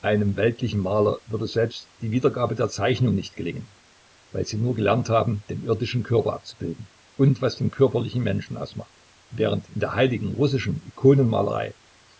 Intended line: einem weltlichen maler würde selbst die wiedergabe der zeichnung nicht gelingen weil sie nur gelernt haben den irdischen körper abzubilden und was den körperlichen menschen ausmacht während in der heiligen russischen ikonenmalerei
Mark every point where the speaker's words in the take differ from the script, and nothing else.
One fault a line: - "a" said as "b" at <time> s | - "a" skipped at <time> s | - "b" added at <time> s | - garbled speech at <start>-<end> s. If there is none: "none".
none